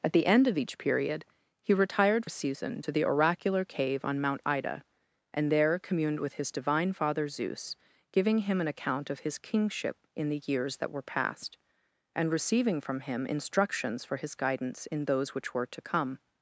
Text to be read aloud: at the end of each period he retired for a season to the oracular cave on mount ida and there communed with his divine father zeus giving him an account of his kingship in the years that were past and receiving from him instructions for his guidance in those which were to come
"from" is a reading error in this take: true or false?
false